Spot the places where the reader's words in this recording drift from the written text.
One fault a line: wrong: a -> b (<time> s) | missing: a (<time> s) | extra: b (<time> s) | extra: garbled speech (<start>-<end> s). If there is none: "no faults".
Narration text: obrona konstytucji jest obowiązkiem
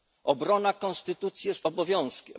no faults